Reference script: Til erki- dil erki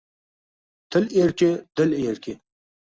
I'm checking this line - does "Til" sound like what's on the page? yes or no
yes